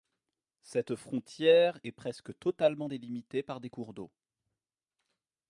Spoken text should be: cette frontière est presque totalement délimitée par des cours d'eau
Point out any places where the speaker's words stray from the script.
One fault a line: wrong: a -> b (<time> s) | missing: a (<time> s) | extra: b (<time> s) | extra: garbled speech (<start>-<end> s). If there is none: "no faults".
no faults